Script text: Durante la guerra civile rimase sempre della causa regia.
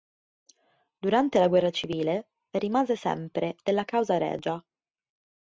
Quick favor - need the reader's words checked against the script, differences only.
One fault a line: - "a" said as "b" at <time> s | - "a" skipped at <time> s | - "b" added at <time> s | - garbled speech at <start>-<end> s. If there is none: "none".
none